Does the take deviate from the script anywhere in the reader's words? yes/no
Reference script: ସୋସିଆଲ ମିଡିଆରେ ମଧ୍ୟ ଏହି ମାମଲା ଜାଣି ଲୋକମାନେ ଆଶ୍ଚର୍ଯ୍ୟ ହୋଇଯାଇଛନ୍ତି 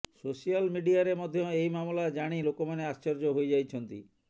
no